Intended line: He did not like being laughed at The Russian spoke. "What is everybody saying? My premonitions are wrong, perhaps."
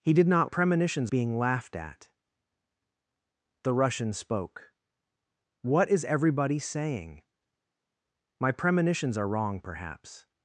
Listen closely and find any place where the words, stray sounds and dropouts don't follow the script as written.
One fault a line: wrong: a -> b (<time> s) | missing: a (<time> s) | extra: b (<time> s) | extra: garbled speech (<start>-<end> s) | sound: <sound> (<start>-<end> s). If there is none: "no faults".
wrong: like -> premonitions (0.4 s)